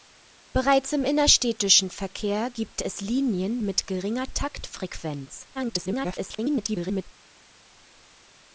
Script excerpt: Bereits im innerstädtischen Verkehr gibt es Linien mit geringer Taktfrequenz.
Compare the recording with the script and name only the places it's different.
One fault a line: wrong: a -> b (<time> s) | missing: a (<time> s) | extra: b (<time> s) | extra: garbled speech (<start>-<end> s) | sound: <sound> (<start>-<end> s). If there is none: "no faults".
extra: garbled speech (5.5-7.0 s)